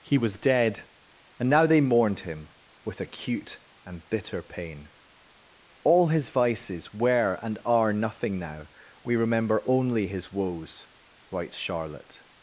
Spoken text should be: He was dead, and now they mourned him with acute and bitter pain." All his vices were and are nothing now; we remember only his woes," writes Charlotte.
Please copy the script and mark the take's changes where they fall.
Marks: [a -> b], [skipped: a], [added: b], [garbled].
He was dead, and now they mourned him with acute and bitter pain." All his vices were and are nothing now; we remember only his woes," writes Charlotte.